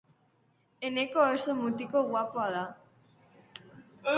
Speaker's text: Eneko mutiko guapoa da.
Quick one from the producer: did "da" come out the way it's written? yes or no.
yes